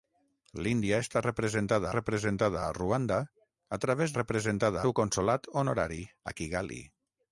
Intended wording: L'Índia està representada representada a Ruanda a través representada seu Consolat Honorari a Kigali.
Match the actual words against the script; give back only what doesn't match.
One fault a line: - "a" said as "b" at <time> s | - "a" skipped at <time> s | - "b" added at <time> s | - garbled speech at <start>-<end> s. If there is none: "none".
none